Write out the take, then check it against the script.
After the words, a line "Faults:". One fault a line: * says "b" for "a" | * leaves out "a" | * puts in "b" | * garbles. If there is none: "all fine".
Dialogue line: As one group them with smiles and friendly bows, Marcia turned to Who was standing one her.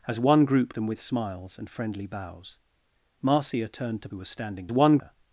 As one group them with smiles and friendly bows, Marcia turned to Who was standing one her.
Faults:
all fine